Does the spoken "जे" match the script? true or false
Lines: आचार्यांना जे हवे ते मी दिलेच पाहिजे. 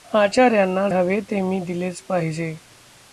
false